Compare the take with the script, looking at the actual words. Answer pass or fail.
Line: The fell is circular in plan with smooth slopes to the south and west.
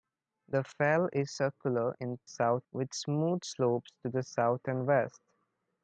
fail